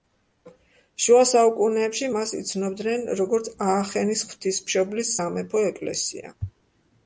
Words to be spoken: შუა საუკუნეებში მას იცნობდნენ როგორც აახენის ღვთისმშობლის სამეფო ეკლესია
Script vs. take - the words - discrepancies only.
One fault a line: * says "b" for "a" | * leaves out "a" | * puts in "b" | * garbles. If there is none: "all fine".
all fine